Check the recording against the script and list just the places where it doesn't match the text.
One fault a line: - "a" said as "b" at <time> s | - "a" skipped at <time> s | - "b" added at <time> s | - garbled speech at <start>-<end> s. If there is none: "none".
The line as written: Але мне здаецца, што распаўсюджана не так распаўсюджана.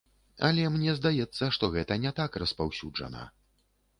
- "распаўсюджана" said as "гэта" at 1.8 s